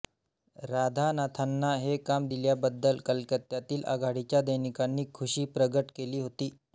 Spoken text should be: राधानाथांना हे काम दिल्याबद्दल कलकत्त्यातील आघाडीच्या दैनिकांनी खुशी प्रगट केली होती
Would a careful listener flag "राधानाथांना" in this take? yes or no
no